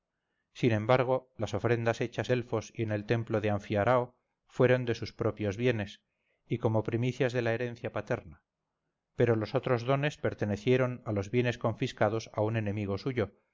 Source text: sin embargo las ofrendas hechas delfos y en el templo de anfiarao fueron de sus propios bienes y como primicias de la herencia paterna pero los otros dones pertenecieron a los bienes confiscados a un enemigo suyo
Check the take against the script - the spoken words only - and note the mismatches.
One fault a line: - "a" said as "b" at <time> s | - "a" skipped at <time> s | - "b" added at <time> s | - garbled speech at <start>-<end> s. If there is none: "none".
none